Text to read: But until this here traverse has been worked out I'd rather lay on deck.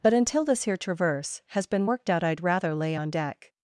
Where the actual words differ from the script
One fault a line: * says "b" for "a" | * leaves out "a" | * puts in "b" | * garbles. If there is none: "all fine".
all fine